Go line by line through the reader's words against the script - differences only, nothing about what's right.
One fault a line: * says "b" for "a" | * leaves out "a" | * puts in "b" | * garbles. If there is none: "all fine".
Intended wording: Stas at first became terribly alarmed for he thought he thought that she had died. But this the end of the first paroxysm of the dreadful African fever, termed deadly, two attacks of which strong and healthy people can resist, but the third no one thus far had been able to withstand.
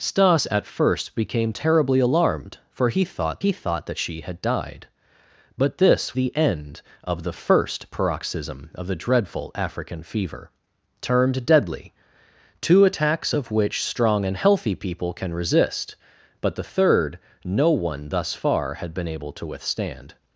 all fine